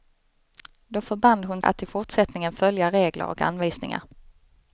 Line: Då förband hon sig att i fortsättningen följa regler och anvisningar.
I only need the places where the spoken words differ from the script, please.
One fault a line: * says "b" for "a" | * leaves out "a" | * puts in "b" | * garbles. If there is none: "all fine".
* leaves out "sig"